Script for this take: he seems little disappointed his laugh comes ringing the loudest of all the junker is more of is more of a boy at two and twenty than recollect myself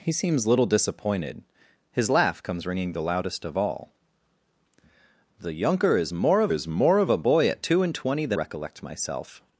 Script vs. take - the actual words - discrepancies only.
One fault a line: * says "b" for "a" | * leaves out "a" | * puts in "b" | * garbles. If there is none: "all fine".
all fine